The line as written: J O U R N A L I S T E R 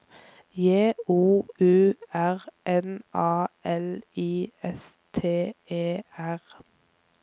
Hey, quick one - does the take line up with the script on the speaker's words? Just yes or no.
yes